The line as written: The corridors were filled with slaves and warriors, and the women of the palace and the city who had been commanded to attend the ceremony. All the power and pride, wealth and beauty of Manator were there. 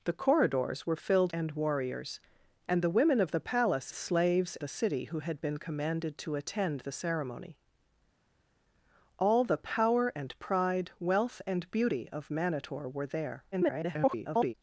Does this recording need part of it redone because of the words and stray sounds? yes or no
yes